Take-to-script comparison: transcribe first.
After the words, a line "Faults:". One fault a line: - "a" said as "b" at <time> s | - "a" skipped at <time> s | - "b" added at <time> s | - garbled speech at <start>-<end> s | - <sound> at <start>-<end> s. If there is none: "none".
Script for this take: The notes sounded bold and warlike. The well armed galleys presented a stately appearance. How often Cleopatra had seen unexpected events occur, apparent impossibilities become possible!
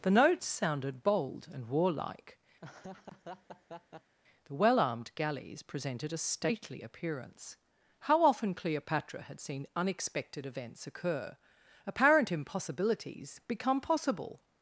The notes sounded bold and warlike. The well armed galleys presented a stately appearance. How often Cleopatra had seen unexpected events occur, apparent impossibilities become possible!
Faults:
- laugh at 2.6-4.2 s